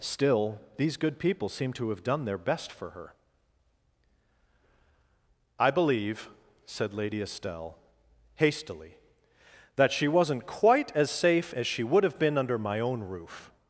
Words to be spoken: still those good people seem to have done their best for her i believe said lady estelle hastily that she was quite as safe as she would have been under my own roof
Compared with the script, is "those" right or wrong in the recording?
wrong